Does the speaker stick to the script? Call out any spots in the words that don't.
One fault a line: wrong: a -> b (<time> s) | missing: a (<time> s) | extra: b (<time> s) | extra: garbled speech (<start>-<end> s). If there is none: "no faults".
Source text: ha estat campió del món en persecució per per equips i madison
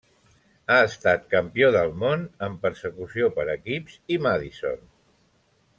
missing: per (3.5 s)